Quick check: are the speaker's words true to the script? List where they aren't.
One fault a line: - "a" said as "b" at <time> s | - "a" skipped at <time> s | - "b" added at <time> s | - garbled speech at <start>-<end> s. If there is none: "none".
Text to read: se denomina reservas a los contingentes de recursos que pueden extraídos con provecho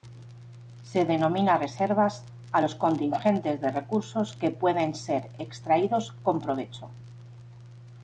- "ser" added at 4.9 s